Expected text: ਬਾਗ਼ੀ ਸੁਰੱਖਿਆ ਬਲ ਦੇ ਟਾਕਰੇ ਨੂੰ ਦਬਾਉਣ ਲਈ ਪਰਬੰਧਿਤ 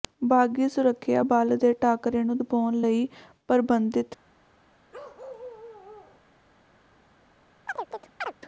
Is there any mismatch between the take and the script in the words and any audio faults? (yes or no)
yes